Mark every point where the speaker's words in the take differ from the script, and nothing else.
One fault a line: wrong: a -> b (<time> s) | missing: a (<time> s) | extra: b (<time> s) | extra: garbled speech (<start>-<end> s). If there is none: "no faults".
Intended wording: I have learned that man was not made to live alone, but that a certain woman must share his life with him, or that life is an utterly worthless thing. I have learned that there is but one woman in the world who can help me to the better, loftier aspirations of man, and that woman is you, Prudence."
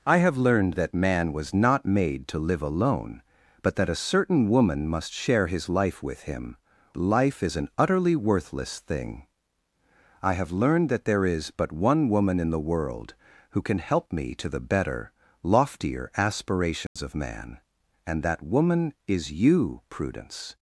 missing: or that (6.6 s)